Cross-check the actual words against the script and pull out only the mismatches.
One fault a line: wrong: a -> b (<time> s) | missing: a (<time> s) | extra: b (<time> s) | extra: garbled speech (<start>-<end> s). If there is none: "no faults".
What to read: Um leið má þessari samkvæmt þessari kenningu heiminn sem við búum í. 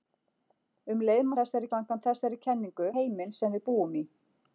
no faults